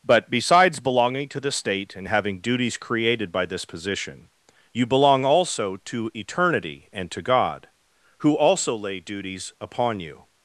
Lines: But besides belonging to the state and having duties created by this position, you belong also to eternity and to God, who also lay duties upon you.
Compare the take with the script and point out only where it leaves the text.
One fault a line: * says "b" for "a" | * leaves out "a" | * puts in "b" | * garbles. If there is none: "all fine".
all fine